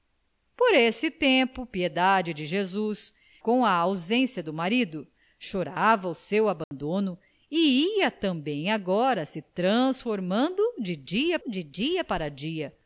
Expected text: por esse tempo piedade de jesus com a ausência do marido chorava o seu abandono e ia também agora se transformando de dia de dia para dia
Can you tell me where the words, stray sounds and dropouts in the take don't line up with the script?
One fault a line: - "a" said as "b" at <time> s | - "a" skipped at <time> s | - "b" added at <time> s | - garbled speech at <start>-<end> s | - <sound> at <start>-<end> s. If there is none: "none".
- dropout at 6.6-6.7 s